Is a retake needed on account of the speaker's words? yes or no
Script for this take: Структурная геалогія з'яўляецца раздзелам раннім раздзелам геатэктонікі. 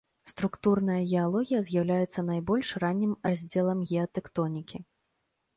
yes